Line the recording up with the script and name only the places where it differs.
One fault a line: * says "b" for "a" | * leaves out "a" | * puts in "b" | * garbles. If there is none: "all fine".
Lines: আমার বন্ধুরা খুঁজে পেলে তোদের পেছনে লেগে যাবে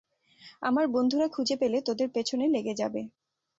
all fine